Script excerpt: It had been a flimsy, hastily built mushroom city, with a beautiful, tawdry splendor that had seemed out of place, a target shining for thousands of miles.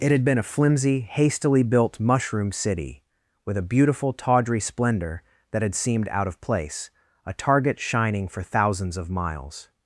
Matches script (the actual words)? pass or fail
pass